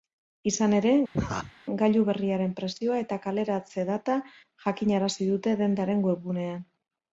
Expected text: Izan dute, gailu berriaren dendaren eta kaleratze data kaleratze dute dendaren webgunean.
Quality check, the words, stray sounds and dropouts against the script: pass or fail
fail